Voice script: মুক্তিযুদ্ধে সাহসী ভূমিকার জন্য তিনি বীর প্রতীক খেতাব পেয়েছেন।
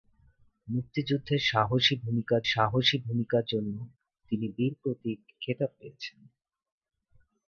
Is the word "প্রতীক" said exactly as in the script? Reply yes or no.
yes